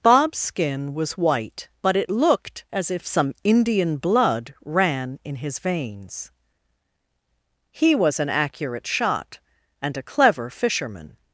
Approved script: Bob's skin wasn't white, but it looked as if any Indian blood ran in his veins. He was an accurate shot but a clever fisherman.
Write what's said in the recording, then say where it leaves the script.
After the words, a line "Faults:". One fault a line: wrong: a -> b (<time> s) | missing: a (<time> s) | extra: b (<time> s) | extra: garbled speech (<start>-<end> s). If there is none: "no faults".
Bob's skin was white, but it looked as if some Indian blood ran in his veins. He was an accurate shot and a clever fisherman.
Faults:
wrong: wasn't -> was (0.9 s)
wrong: any -> some (3.0 s)
wrong: but -> and (9.8 s)